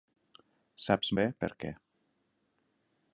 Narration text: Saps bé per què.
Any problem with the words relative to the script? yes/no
no